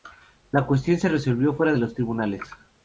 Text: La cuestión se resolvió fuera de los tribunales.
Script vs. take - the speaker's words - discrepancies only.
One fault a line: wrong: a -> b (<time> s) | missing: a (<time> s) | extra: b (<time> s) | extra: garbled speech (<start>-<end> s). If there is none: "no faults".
no faults